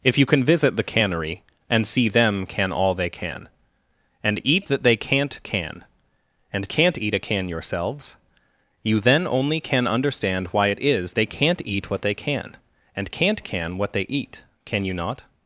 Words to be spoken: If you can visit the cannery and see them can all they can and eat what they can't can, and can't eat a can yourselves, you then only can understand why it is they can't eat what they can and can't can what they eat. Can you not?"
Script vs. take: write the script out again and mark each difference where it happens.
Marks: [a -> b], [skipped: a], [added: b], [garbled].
If you can visit the cannery and see them can all they can and eat [what -> that] they can't can, and can't eat a can yourselves, you then only can understand why it is they can't eat what they can and can't can what they eat. Can you not?"